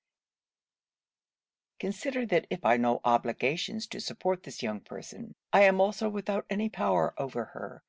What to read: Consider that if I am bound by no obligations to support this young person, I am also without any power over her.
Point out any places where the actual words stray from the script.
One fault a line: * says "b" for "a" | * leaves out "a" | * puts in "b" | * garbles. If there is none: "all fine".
* leaves out "I am bound"